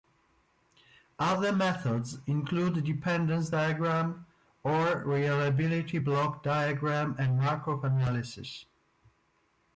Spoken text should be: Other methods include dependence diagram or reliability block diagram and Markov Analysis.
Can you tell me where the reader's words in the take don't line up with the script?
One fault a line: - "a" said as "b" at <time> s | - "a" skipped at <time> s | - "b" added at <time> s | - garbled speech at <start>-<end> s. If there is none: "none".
none